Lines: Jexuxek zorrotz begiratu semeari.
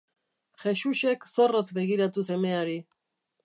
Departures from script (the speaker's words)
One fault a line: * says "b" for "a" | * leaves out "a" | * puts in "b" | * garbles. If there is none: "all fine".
all fine